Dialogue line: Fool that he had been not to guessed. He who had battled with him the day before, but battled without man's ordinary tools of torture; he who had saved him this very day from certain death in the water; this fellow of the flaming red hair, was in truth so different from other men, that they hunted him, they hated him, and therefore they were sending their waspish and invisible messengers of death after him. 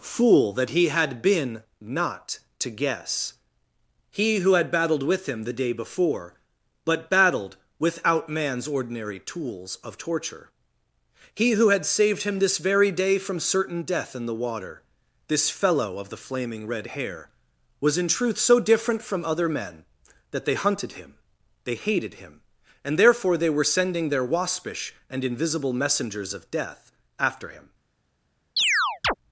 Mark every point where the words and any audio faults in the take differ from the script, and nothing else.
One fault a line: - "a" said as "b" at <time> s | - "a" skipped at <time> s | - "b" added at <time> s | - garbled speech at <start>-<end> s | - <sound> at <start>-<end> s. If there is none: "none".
- "guessed" said as "guess" at 2.7 s
- chirp at 28.6-29.1 s